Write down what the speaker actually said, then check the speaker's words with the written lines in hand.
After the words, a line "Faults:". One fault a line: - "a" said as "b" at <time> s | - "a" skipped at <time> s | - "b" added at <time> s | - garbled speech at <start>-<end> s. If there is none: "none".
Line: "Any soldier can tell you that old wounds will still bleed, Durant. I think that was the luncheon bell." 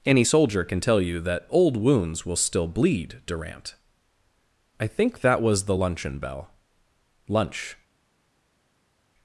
"Any soldier can tell you that old wounds will still bleed, Durant. I think that was the luncheon bell." Lunch
Faults:
- "Lunch" added at 7.3 s